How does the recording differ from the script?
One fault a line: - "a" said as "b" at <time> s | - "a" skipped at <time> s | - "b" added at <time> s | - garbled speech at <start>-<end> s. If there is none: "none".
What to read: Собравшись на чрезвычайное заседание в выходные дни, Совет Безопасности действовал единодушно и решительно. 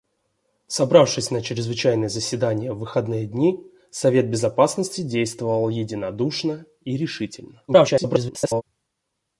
- garbled speech at 7.7-8.6 s